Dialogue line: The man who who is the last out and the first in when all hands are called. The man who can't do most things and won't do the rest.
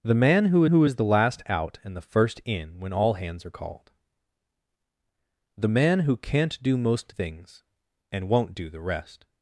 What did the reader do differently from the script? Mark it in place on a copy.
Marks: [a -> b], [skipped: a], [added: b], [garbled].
The man who who is the last out and the first in when all hands are called. The man who can't do most things and won't do the rest.